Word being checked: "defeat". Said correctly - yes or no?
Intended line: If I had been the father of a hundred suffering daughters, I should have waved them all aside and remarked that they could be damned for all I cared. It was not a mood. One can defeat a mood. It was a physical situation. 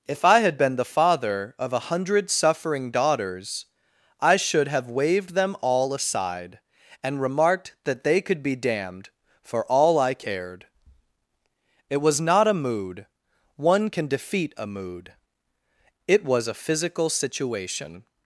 yes